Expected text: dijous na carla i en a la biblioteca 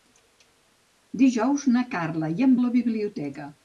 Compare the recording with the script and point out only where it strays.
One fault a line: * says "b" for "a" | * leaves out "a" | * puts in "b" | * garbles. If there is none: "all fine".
all fine